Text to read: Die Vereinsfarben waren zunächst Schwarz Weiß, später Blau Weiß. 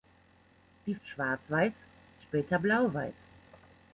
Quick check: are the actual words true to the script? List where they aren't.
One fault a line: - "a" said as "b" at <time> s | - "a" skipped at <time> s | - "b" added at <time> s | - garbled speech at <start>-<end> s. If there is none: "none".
- "Vereinsfarben waren zunächst" skipped at 0.9 s